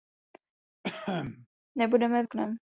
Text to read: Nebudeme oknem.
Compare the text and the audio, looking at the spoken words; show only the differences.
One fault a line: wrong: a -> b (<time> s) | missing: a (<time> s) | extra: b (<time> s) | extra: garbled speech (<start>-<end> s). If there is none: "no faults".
no faults